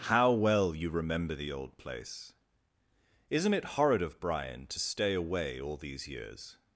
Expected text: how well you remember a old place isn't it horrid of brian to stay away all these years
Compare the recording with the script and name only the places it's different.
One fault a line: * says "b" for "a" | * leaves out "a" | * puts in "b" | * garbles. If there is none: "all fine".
* says "the" for "a"